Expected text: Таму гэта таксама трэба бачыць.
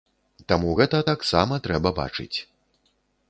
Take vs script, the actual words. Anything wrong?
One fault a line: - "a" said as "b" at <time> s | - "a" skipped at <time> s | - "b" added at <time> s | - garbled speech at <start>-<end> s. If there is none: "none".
none